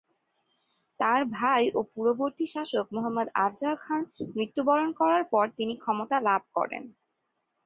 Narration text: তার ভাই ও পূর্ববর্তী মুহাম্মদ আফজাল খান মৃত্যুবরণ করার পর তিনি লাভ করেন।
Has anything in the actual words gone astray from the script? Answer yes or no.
yes